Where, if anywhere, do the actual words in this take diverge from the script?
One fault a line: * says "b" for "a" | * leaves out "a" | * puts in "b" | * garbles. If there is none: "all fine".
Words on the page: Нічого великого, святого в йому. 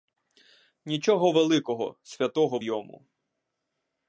all fine